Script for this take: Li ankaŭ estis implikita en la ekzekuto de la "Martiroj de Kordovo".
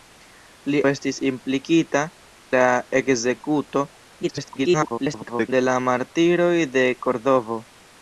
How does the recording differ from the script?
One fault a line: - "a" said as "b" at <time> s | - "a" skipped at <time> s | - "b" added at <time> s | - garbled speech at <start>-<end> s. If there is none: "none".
- "ankaŭ" skipped at 0.8 s
- "en" skipped at 2.0 s
- garbled speech at 4.2-5.5 s